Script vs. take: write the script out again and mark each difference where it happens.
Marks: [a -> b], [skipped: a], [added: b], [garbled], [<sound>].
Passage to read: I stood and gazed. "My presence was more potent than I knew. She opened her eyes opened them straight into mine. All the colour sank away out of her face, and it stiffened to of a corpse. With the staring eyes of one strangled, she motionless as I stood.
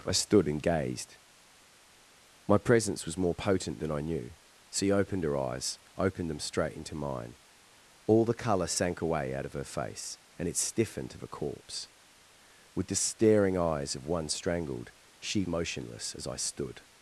I stood and gazed. "My presence was more potent than I knew. She opened her eyes opened them straight into mine. All the colour sank away out of her face, and it stiffened to of a corpse. With the staring eyes of one strangled, she motionless as I stood.